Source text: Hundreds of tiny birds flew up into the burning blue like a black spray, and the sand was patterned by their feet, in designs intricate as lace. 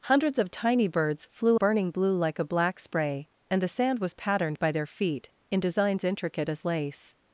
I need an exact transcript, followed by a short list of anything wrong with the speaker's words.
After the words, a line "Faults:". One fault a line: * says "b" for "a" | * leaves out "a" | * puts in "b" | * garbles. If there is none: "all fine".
Hundreds of tiny birds flew burning blue like a black spray, and the sand was patterned by their feet, in designs intricate as lace.
Faults:
* leaves out "up into the"